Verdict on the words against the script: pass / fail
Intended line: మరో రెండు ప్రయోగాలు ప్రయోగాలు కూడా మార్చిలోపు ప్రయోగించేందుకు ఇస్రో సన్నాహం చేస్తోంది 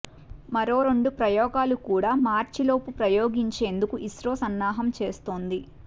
fail